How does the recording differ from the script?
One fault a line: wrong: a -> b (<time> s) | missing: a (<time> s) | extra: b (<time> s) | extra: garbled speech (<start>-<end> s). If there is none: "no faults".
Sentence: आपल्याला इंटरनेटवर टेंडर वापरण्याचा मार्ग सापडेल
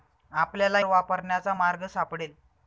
missing: इंटरनेटवर टेंडर (0.8 s)